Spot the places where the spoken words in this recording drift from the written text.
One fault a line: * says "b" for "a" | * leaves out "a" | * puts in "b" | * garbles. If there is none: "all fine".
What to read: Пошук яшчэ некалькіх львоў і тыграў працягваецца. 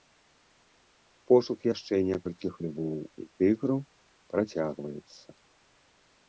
all fine